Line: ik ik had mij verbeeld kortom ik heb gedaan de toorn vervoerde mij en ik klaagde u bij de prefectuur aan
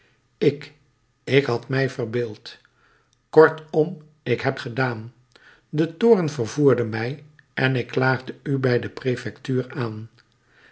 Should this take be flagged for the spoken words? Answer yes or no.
no